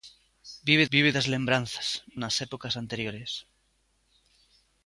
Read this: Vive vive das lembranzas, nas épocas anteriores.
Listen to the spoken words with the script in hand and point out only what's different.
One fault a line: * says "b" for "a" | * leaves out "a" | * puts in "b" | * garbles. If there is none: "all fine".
all fine